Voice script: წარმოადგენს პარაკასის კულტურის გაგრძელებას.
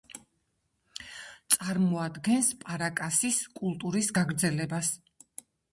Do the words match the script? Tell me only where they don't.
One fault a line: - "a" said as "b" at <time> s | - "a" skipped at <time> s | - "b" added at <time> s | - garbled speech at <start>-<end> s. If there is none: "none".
none